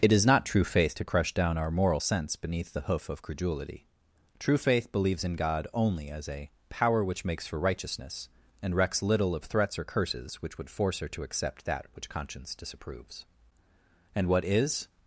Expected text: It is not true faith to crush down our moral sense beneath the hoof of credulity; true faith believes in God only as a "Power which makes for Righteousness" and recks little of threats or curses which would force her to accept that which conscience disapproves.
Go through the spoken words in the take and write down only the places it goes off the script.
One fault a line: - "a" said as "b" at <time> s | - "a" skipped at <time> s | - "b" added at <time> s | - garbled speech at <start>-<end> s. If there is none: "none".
- "And what is" added at 14.1 s